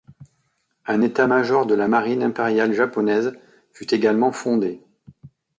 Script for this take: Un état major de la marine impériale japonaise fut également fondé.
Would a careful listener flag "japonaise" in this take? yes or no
no